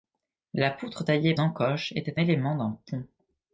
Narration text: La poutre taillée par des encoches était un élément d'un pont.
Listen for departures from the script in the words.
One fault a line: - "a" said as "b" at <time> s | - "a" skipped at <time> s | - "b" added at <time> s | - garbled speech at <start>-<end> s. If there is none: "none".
- "par des" skipped at 1.3 s
- "un" skipped at 2.2 s